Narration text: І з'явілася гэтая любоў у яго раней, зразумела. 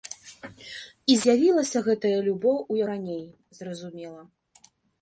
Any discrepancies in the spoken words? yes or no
yes